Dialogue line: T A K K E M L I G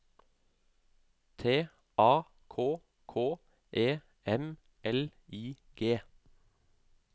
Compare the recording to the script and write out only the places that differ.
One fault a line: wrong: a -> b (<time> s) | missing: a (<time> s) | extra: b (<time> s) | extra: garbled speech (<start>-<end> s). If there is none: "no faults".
no faults